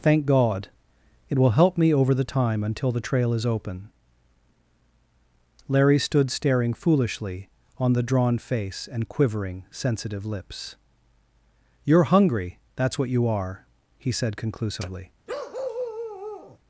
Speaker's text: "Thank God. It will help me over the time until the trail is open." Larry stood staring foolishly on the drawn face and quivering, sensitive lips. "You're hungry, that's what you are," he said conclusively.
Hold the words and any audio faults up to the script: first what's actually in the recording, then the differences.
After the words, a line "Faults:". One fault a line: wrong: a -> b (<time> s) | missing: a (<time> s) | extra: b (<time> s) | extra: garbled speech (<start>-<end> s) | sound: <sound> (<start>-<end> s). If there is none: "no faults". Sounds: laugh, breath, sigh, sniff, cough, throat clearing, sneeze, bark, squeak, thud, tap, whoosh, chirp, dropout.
"Thank God. It will help me over the time until the trail is open." Larry stood staring foolishly on the drawn face and quivering, sensitive lips. "You're hungry, that's what you are," he said conclusively.
Faults:
sound: bark (15.3-16.6 s)